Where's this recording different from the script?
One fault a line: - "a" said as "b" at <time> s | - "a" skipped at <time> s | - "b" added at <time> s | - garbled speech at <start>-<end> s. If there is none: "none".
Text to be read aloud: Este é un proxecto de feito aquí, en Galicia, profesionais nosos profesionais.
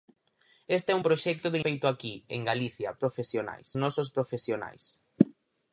none